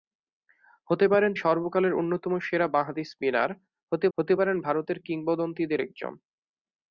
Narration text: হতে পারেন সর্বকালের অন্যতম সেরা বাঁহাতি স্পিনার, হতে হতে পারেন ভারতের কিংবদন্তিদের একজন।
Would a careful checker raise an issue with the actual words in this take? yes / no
no